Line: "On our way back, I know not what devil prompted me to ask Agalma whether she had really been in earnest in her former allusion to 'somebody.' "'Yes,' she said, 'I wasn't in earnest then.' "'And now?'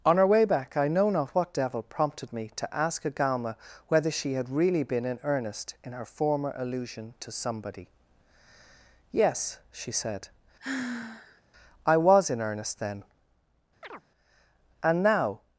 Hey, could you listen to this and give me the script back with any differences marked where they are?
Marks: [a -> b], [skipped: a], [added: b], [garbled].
"On our way back, I know not what devil prompted me to ask Agalma whether she had really been in earnest in her former allusion to 'somebody.' "'Yes,' she said, 'I [wasn't -> was] in earnest then.' "'And now?'